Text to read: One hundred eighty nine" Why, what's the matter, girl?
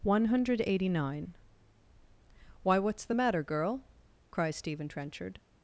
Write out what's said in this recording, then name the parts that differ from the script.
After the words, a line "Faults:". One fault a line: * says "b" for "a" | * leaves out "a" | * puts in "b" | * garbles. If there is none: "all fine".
One hundred eighty nine" Why, what's the matter, girl? cries Stephen Trenchard
Faults:
* puts in "cries Stephen Trenchard"